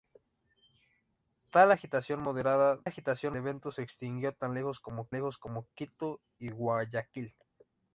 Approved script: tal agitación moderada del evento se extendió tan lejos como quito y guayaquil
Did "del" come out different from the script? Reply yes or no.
yes